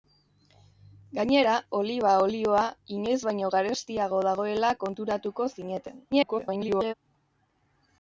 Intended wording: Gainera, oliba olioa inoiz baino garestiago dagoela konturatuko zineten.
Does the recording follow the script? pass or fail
fail